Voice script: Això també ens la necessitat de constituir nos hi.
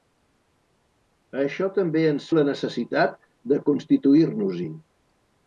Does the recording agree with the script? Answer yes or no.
yes